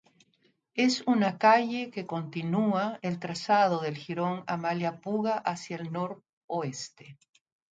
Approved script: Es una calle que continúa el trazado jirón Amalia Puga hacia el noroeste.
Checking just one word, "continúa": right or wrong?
right